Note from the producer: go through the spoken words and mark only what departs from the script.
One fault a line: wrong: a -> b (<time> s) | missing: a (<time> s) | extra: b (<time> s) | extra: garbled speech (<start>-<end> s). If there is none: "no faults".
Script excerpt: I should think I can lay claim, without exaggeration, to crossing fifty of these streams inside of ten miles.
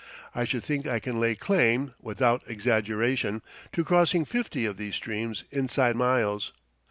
missing: of ten (6.0 s)